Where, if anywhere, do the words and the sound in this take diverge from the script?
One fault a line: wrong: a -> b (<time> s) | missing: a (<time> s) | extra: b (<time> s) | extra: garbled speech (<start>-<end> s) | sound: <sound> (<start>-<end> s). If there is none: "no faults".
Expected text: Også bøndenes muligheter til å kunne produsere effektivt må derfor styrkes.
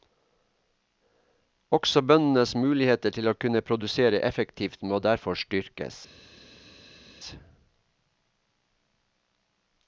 no faults